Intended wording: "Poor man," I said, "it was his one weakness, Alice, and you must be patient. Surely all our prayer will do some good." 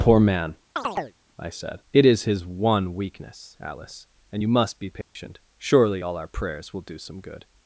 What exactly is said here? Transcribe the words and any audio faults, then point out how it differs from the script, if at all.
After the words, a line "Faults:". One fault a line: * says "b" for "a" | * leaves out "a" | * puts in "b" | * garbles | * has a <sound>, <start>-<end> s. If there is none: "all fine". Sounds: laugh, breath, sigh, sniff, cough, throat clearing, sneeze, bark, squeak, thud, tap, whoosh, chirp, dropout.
"Poor man," I said, "it is his one weakness, Alice, and you must be patient. Surely all our prayers will do some good."
Faults:
* has a chirp, 0.8-1.2 s
* says "is" for "was"
* has a dropout, 5.0-5.2 s
* says "prayers" for "prayer"